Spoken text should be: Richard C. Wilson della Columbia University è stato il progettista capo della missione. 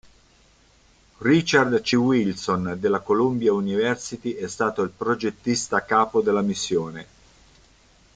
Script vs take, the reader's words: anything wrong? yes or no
no